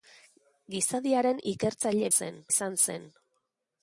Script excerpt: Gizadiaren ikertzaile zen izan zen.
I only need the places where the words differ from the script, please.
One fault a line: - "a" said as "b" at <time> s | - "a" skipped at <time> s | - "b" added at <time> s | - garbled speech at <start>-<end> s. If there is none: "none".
none